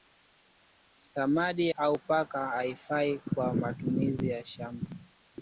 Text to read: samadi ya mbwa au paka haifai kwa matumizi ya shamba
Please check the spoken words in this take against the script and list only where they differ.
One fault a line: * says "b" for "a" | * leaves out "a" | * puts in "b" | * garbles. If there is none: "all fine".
* leaves out "ya mbwa"